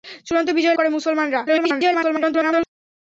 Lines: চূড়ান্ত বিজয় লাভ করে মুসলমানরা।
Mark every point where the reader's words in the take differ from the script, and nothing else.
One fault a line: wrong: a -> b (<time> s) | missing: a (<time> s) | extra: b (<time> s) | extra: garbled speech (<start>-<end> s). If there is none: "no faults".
missing: লাভ (0.8 s)
extra: garbled speech (1.5-2.7 s)